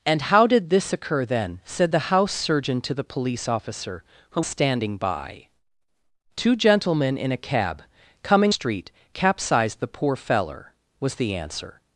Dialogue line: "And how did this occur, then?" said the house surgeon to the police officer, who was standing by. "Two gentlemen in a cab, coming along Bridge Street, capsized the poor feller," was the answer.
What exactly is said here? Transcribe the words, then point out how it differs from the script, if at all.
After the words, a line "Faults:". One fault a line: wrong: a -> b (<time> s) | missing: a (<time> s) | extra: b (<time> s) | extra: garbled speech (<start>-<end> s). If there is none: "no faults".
"And how did this occur, then?" said the house surgeon to the police officer, who standing by. "Two gentlemen in a cab, coming Street, capsized the poor feller," was the answer.
Faults:
missing: was (4.4 s)
missing: along Bridge (8.5 s)